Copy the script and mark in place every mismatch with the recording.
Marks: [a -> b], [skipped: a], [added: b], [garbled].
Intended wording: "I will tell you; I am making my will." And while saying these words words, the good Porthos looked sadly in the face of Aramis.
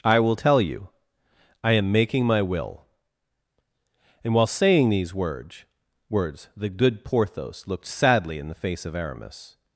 "I will tell you; I am making my will." And while saying these words words, the good Porthos looked sadly in the face of Aramis.